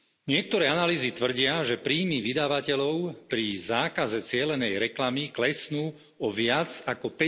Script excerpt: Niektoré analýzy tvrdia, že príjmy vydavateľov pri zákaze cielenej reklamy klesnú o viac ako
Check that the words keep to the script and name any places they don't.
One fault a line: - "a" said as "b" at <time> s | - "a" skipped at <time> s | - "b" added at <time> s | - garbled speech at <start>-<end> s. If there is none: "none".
none